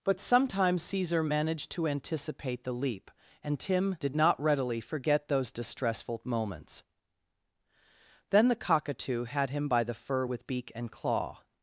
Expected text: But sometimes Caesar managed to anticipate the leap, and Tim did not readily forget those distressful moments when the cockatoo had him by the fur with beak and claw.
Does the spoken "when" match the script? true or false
false